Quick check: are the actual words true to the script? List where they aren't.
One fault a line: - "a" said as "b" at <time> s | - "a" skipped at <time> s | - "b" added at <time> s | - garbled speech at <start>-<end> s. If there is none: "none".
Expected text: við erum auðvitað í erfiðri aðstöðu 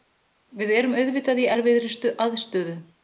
none